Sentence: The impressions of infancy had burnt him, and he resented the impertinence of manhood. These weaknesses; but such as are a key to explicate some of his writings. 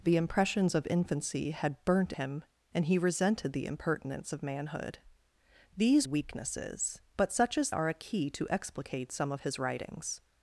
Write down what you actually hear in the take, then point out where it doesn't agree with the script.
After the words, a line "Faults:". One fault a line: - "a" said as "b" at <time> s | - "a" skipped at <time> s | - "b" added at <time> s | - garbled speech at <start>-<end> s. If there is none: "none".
The impressions of infancy had burnt him, and he resented the impertinence of manhood. These weaknesses; but such as are a key to explicate some of his writings.
Faults:
none